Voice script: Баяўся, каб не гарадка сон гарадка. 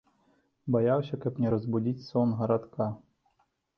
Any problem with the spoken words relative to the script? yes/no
yes